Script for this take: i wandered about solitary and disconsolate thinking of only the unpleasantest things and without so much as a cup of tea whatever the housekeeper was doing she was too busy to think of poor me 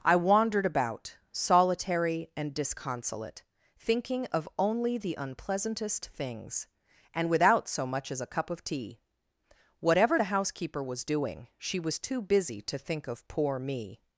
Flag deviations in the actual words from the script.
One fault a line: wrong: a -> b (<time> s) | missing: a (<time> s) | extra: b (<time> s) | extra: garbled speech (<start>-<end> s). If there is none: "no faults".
no faults